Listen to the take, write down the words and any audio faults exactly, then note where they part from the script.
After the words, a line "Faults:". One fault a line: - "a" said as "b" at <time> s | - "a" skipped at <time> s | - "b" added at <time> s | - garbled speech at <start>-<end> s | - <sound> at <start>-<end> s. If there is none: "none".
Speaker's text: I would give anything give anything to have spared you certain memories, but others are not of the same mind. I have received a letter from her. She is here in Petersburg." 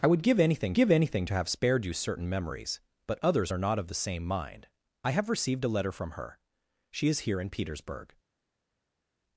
I would give anything give anything to have spared you certain memories, but others are not of the same mind. I have received a letter from her. She is here in Petersburg."
Faults:
none